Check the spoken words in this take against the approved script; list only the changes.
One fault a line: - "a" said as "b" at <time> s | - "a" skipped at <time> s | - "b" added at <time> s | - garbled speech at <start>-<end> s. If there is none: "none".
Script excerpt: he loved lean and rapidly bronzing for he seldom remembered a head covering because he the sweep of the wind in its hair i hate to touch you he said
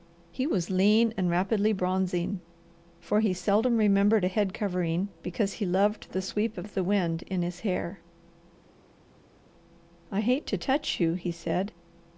- "loved" said as "was" at 0.5 s
- "loved" added at 5.6 s
- "its" said as "his" at 7.4 s